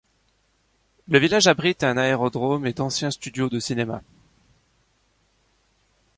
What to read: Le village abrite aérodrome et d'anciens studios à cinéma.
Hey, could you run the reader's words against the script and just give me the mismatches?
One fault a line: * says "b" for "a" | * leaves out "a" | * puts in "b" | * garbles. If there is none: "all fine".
* puts in "un"
* says "de" for "à"